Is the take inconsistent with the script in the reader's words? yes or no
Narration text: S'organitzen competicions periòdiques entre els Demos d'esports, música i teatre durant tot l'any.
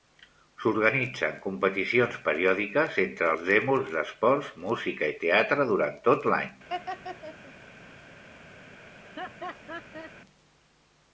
no